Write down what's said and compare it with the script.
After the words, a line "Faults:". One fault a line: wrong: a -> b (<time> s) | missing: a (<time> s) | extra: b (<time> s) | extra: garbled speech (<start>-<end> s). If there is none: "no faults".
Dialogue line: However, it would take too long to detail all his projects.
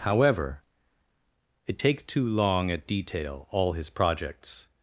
However, it take too long at detail all his projects.
Faults:
missing: would (1.8 s)
wrong: to -> at (2.7 s)